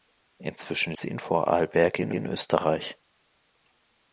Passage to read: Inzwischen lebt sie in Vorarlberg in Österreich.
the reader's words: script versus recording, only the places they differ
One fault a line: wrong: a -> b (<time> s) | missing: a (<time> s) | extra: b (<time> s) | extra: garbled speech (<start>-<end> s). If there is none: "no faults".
missing: lebt (0.9 s)
extra: in (2.1 s)